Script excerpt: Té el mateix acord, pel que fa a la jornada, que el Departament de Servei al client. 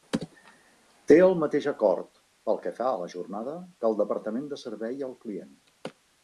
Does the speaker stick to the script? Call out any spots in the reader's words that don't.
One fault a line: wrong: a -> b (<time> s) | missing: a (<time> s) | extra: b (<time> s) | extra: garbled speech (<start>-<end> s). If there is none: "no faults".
no faults